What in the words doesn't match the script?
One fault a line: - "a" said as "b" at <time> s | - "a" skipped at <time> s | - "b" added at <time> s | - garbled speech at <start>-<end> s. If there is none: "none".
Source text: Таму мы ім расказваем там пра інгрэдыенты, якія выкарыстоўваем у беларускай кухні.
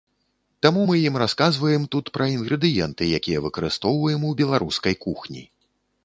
- "там" said as "тут" at 1.9 s